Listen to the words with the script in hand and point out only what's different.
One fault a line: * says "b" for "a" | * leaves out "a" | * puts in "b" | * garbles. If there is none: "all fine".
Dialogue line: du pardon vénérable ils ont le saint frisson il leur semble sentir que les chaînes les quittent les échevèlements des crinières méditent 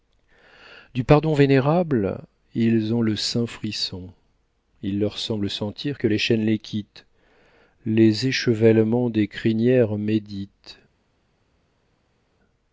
all fine